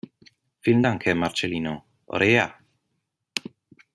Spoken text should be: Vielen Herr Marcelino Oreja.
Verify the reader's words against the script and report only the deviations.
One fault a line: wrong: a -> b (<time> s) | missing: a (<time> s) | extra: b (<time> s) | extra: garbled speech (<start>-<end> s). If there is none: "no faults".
extra: Dank (0.8 s)